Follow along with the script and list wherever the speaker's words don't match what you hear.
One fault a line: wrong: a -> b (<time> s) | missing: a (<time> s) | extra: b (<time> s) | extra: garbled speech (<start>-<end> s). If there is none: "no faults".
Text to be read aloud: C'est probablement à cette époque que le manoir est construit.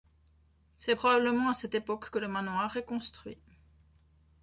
no faults